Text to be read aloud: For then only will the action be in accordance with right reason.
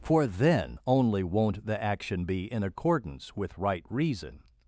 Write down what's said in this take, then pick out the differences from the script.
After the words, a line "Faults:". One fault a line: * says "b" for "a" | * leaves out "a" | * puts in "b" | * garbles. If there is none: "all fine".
For then only won't the action be in accordance with right reason.
Faults:
* says "won't" for "will"